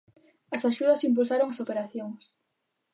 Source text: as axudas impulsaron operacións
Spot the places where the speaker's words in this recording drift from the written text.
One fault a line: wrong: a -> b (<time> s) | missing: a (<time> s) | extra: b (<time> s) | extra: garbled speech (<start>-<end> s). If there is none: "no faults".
extra: as (1.5 s)